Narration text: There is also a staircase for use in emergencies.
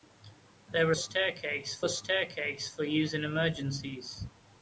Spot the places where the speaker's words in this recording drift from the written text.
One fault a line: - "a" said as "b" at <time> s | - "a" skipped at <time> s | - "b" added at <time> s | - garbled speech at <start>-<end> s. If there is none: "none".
- "also" said as "staircase" at 0.9 s